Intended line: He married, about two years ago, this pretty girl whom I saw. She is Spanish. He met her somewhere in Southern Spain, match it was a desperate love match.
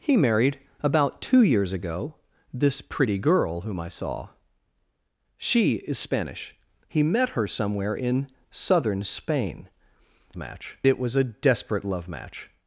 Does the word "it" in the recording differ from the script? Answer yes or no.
no